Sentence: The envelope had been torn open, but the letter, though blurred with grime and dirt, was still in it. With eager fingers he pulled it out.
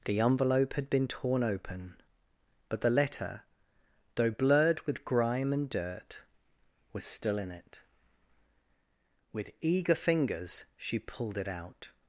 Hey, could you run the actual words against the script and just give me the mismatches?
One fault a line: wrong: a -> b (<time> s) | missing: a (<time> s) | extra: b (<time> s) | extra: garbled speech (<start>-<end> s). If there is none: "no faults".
wrong: he -> she (10.8 s)